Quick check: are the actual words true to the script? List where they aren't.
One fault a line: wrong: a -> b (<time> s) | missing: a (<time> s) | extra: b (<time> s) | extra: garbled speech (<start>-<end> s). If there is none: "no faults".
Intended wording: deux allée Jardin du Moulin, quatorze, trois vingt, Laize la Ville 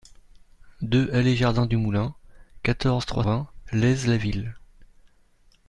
no faults